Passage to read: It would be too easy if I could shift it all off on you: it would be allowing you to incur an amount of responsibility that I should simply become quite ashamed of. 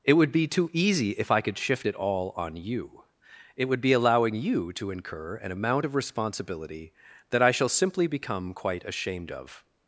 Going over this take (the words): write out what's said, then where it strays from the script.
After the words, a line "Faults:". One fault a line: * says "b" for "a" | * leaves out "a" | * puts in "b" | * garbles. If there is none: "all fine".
It would be too easy if I could shift it all on you: it would be allowing you to incur an amount of responsibility that I shall simply become quite ashamed of.
Faults:
* leaves out "off"
* says "shall" for "should"